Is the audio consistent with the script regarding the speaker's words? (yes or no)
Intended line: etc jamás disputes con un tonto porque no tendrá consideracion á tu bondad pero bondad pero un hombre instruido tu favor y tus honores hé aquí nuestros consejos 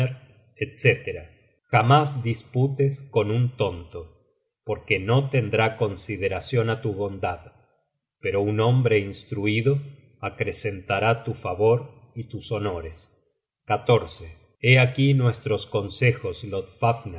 no